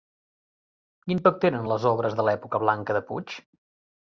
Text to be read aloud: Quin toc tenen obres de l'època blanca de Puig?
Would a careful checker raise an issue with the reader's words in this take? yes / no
yes